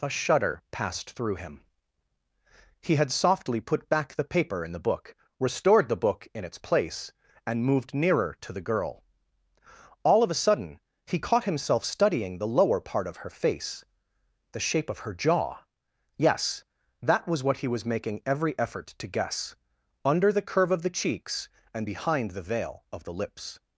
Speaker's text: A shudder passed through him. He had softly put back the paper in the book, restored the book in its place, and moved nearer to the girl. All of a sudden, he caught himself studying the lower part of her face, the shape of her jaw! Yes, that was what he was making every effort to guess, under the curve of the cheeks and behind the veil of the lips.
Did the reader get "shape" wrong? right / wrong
right